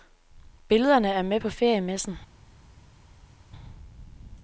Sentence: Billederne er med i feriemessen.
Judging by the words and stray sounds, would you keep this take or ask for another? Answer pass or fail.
fail